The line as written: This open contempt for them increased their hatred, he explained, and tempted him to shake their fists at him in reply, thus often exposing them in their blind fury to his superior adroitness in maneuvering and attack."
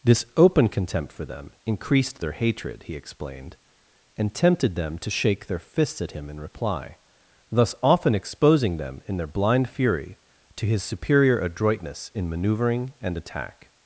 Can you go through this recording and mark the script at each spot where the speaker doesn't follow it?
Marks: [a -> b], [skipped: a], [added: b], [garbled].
This open contempt for them increased their hatred, he explained, and tempted [him -> them] to shake their fists at him in reply, thus often exposing them in their blind fury to his superior adroitness in maneuvering and attack."